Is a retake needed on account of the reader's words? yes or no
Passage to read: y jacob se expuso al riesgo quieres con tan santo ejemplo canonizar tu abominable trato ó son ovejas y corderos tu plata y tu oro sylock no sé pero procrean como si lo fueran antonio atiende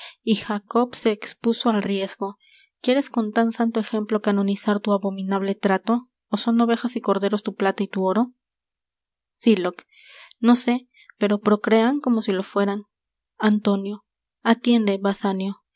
no